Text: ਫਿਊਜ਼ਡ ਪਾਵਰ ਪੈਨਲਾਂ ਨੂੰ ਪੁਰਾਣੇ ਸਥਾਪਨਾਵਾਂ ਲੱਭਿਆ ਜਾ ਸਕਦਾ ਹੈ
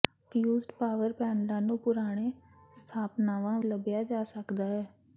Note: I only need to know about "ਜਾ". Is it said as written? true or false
true